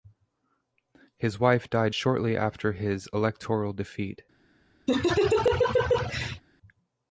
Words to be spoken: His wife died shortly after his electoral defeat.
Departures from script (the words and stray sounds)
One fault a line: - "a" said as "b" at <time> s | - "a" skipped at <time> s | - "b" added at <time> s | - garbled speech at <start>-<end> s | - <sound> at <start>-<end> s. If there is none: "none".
- laugh at 4.9-6.4 s